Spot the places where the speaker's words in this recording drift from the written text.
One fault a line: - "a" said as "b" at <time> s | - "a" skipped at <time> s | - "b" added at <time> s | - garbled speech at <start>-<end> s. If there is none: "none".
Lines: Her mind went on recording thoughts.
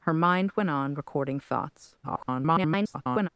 - garbled speech at 2.0-3.3 s